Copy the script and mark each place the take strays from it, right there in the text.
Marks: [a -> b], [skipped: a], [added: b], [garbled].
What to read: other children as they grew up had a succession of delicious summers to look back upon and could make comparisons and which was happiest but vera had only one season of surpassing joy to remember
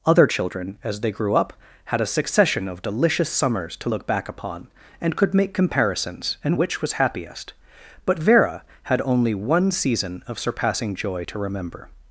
other children as they grew up had a succession of delicious summers to look back upon and could make comparisons and which was happiest but vera had only one season of surpassing joy to remember